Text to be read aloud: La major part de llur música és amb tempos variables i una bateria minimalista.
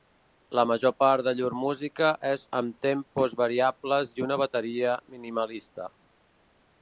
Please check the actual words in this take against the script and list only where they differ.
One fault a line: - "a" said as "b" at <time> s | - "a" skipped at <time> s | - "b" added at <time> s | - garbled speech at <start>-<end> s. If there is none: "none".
none